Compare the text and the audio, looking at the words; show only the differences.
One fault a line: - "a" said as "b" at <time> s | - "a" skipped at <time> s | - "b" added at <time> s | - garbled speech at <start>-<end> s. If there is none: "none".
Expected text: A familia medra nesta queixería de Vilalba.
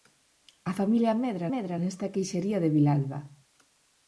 - "medra" added at 1.5 s